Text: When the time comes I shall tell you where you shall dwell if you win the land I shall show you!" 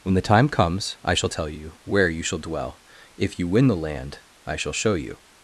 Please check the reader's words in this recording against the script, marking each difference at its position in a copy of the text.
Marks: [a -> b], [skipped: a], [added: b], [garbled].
When the time comes I shall tell you where you shall dwell if you win the land I shall show you!"